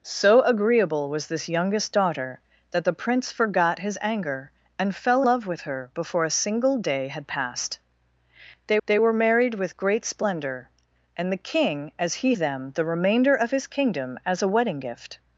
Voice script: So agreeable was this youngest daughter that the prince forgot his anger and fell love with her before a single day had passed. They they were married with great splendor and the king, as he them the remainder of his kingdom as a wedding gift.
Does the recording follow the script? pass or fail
pass